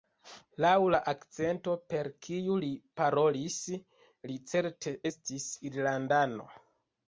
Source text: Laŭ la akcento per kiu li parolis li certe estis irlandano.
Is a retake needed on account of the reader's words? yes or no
no